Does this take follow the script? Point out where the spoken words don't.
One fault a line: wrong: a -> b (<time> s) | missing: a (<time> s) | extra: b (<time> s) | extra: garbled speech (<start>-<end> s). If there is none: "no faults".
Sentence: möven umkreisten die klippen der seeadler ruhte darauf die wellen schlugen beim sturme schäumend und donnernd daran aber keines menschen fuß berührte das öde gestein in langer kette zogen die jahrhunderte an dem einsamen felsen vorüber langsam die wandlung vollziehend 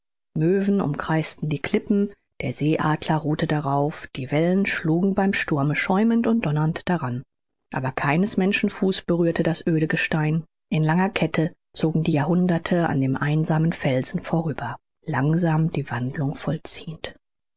no faults